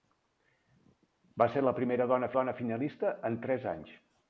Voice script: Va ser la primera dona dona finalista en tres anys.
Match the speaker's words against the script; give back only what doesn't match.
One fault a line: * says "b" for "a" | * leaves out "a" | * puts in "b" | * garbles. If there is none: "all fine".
all fine